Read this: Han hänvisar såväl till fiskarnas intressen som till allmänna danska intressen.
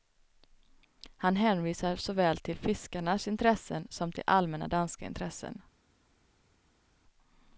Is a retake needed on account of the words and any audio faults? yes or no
no